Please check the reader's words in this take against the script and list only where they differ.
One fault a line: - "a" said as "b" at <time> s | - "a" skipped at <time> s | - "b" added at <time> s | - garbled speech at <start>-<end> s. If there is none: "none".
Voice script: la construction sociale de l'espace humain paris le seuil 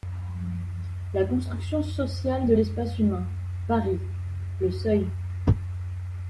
none